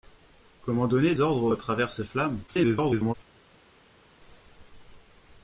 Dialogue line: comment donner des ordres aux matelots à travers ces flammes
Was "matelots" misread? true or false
true